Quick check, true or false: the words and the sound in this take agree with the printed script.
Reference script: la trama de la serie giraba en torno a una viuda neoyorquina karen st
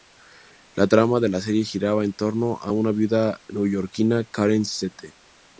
true